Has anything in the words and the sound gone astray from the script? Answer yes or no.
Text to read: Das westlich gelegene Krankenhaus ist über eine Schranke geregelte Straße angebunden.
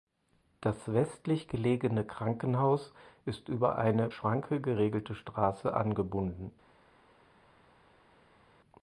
no